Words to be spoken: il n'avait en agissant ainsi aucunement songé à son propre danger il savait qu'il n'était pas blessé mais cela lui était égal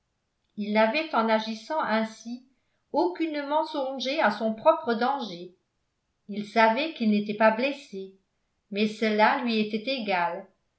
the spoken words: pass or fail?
pass